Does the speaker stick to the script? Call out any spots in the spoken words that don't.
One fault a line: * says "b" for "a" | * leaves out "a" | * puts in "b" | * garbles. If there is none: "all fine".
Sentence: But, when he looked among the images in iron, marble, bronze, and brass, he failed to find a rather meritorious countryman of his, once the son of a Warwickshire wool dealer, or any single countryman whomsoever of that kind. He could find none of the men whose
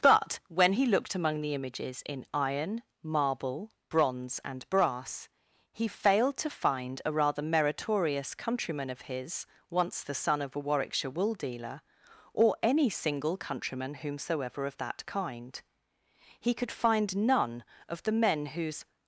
all fine